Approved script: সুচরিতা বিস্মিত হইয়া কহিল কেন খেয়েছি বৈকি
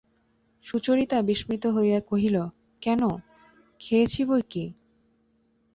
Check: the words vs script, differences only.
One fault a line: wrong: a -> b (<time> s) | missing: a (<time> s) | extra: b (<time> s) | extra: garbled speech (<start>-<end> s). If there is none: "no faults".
no faults